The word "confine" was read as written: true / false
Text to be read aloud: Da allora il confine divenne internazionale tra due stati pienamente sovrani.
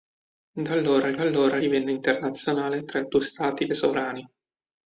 false